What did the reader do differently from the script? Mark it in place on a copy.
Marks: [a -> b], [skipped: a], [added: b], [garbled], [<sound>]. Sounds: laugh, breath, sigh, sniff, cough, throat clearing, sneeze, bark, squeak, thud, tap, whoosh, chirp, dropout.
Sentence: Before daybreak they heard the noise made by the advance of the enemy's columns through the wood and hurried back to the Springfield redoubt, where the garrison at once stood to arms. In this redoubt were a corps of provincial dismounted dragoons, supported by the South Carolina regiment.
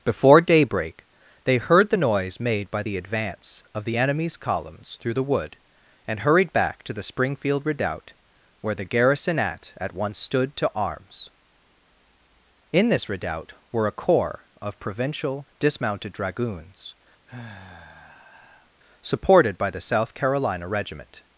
Before daybreak they heard the noise made by the advance of the enemy's columns through the wood and hurried back to the Springfield redoubt, where the garrison at [added: at] once stood to arms. In this redoubt were a corps of provincial dismounted dragoons, [sigh] supported by the South Carolina regiment.